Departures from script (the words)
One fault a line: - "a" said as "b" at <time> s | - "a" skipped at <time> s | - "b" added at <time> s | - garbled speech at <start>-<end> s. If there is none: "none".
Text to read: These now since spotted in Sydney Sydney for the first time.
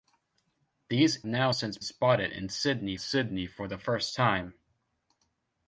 none